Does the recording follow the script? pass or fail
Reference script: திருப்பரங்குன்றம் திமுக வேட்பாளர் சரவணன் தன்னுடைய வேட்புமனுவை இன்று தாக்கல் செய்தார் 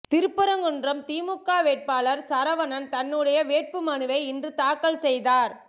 pass